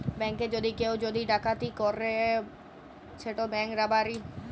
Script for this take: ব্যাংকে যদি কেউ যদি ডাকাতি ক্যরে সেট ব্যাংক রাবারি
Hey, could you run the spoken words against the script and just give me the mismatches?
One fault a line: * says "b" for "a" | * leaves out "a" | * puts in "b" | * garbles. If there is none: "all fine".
all fine